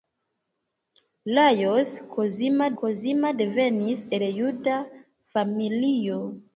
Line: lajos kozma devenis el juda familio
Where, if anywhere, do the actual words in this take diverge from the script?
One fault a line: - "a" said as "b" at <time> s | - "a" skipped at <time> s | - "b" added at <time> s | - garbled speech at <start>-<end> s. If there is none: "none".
- "kozma" added at 2.8 s